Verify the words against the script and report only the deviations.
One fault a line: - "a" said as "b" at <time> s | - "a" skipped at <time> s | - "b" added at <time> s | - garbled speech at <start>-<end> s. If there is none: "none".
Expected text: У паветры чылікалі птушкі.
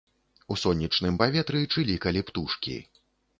- "сонечным" added at 0.6 s